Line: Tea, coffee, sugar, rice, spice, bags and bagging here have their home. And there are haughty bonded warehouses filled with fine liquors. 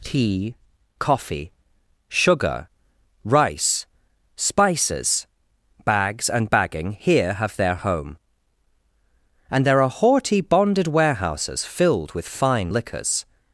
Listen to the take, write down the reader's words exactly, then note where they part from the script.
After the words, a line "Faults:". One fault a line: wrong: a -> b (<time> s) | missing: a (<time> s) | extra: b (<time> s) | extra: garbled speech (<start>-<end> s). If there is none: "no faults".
Tea, coffee, sugar, rice, spices, bags and bagging here have their home. And there are haughty bonded warehouses filled with fine liquors.
Faults:
wrong: spice -> spices (4.3 s)